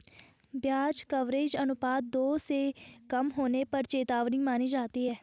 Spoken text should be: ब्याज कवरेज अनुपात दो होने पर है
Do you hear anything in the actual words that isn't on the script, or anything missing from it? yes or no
yes